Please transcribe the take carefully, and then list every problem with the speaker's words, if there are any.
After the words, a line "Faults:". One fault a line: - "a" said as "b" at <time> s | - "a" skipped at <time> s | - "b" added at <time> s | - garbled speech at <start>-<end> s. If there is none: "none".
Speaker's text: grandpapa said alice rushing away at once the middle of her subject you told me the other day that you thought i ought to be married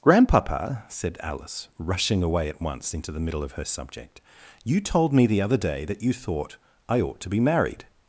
grandpapa said alice rushing away at once into the middle of her subject you told me the other day that you thought i ought to be married
Faults:
- "into" added at 2.9 s